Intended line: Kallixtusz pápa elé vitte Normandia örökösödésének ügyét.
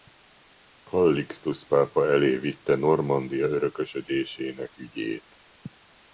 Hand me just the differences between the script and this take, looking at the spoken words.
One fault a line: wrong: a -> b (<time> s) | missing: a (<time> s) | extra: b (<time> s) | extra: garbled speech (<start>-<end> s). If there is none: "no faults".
no faults